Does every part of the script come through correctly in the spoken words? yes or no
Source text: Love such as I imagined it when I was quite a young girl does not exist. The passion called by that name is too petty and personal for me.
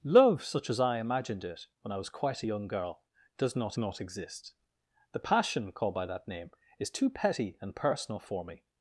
no